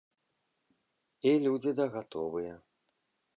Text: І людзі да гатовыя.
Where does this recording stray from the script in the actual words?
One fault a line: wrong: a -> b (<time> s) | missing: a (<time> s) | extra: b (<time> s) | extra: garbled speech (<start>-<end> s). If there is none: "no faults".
no faults